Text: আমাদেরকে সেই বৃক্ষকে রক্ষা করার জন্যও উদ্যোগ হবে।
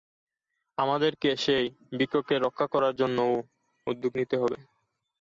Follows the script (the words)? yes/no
no